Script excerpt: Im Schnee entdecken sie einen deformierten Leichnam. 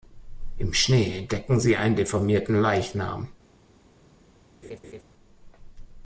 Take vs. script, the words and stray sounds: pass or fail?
fail